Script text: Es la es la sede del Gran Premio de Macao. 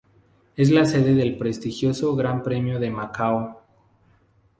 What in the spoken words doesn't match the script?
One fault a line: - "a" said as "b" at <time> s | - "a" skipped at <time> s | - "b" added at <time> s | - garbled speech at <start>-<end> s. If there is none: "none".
- "es la" skipped at 0.8 s
- "prestigioso" added at 1.4 s